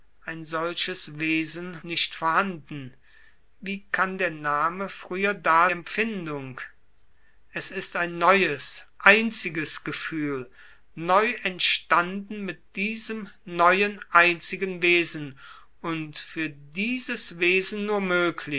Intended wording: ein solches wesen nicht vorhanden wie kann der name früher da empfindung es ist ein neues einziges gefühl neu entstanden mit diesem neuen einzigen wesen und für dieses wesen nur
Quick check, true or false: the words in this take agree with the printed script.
true